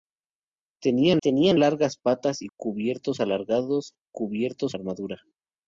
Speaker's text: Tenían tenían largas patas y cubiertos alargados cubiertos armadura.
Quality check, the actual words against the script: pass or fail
pass